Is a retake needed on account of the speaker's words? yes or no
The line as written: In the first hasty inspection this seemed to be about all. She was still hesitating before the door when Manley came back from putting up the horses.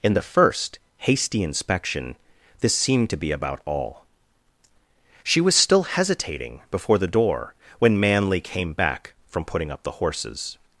no